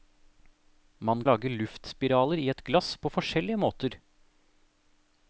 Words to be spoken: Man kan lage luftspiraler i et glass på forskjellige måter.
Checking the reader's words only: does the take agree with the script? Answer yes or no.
no